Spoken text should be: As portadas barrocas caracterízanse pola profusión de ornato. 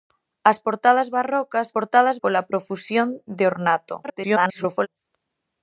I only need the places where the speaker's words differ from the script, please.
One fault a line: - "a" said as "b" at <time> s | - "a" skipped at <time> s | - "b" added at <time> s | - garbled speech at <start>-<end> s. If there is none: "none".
- "caracterízanse" said as "portadas" at 1.7 s
- garbled speech at 4.0-4.9 s